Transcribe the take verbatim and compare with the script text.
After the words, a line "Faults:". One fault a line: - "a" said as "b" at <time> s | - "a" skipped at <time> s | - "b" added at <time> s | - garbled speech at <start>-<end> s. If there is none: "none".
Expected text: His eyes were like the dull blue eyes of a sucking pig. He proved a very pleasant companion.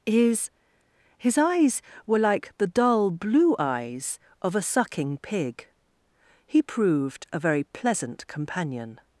His his eyes were like the dull blue eyes of a sucking pig. He proved a very pleasant companion.
Faults:
- "his" added at 1.2 s